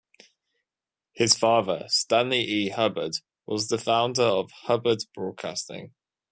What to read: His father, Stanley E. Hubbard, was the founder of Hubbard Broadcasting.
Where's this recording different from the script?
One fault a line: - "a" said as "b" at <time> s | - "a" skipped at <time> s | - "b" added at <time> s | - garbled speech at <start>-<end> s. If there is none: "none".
none